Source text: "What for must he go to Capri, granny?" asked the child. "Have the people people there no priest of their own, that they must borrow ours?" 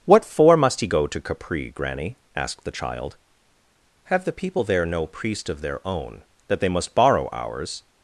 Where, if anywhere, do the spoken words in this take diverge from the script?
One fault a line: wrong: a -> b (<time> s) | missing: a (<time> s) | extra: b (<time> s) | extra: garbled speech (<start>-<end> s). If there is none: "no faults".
missing: people (4.6 s)